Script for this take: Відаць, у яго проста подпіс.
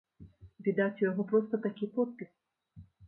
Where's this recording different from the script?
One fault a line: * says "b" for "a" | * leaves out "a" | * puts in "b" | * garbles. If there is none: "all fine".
* puts in "такі"